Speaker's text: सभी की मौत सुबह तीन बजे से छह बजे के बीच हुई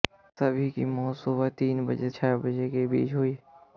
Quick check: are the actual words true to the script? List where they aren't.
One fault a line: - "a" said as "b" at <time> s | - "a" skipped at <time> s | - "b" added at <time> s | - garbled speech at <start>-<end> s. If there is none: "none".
- "से" skipped at 2.1 s